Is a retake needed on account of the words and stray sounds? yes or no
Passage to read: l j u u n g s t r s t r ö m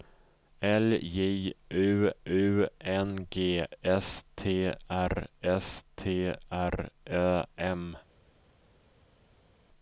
no